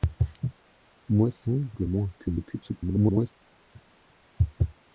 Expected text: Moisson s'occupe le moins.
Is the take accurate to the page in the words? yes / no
no